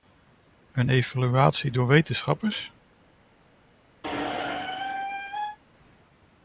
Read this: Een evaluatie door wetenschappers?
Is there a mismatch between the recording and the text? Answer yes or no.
no